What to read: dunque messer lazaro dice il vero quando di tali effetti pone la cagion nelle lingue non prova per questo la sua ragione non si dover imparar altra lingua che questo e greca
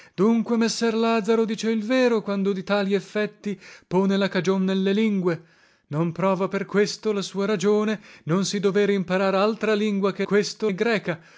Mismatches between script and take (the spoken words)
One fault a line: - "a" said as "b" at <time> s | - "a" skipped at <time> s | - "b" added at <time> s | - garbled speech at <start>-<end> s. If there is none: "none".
none